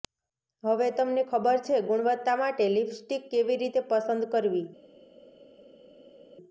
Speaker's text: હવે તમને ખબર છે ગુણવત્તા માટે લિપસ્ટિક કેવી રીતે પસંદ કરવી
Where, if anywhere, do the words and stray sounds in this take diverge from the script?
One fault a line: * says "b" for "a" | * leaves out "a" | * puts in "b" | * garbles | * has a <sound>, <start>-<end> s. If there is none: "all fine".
all fine